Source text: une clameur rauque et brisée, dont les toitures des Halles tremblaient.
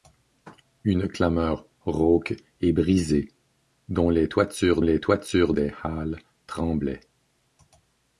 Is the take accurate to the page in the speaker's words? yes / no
no